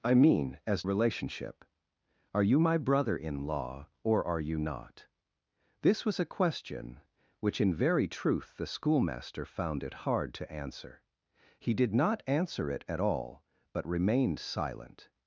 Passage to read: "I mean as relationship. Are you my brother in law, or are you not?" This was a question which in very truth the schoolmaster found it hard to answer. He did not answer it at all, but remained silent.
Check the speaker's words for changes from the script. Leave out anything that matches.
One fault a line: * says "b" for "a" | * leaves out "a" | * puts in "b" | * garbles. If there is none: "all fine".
all fine